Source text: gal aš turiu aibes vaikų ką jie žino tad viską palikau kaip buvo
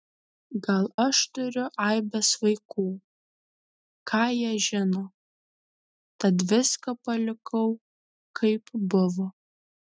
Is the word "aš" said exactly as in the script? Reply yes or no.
yes